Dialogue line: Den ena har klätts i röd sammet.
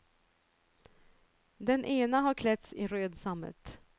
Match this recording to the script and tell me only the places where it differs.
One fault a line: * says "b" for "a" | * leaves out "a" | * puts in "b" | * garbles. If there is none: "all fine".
all fine